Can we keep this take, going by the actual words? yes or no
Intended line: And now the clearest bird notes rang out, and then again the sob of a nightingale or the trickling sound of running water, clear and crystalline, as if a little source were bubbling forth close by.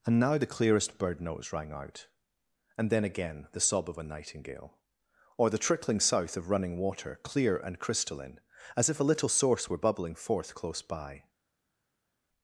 no